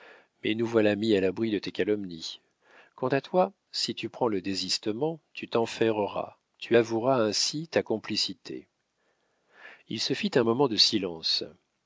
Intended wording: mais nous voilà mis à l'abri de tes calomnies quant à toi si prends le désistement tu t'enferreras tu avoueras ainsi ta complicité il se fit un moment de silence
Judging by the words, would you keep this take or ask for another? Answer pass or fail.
fail